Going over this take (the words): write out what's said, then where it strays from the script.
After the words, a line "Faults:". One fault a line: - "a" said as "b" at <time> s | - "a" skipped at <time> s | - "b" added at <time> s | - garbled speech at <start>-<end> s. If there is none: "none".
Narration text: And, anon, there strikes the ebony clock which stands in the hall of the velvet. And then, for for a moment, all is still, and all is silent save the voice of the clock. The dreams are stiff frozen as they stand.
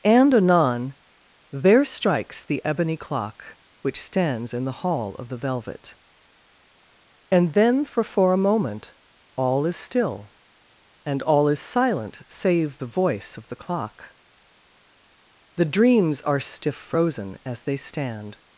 And, anon, there strikes the ebony clock which stands in the hall of the velvet. And then, for for a moment, all is still, and all is silent save the voice of the clock. The dreams are stiff frozen as they stand.
Faults:
none